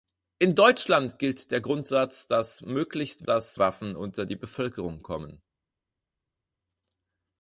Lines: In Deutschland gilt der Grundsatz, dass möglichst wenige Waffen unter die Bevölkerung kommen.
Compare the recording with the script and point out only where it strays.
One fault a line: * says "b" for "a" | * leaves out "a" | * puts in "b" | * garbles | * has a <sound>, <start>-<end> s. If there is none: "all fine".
* says "dass" for "wenige"